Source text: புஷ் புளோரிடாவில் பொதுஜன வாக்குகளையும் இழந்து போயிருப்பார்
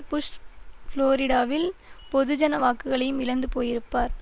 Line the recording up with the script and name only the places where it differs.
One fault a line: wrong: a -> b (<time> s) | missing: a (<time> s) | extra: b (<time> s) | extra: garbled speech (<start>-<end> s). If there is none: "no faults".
no faults